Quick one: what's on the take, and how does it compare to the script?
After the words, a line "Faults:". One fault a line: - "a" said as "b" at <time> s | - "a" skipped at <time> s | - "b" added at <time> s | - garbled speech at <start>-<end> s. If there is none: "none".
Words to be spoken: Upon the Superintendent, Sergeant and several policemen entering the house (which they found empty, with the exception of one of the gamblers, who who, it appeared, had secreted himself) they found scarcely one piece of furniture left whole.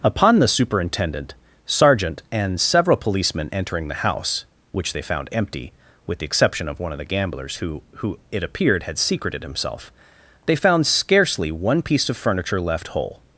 Upon the Superintendent, Sergeant and several policemen entering the house (which they found empty, with the exception of one of the gamblers, who who, it appeared, had secreted himself) they found scarcely one piece of furniture left whole.
Faults:
none